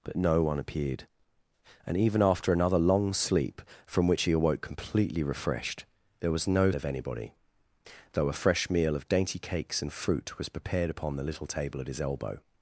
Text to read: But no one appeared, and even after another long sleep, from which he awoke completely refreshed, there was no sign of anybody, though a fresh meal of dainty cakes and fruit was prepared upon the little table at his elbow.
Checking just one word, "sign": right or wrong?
wrong